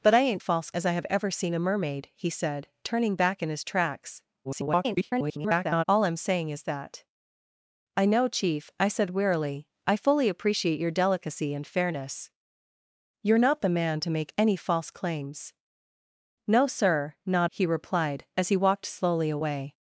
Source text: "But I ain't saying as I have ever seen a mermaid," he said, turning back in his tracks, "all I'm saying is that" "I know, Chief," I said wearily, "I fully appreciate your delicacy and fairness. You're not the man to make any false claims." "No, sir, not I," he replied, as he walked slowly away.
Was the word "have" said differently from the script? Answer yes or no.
no